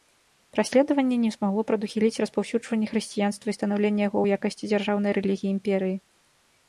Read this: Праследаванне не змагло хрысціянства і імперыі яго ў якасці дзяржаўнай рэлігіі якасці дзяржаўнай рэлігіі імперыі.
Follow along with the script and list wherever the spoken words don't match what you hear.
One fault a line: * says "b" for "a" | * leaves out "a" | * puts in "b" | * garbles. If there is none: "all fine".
* puts in "прадухіліць распаўсюджванне"
* says "станаўленне" for "імперыі"
* leaves out "якасці дзяржаўнай рэлігіі"